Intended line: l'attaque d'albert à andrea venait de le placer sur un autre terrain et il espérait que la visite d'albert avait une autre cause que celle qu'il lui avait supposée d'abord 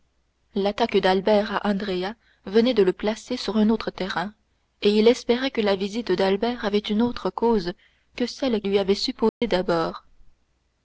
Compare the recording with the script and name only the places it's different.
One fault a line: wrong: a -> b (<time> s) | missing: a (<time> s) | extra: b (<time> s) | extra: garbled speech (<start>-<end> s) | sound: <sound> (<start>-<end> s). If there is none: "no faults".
missing: qu'il (8.6 s)
sound: dropout (9.3-9.4 s)